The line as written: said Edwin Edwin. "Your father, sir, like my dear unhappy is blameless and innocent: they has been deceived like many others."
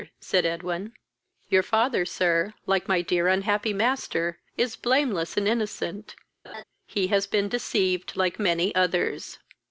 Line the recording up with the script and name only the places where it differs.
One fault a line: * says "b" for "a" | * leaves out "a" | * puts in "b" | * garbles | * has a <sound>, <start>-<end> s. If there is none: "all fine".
* leaves out "Edwin"
* puts in "master"
* has a laugh, 6.4-6.6 s
* says "he" for "they"